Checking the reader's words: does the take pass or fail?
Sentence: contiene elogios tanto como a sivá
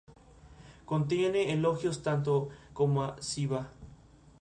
pass